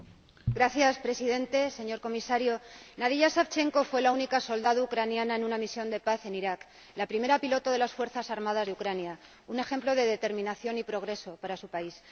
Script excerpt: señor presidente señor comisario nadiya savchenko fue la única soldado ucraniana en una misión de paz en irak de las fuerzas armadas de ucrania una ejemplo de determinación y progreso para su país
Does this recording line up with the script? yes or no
no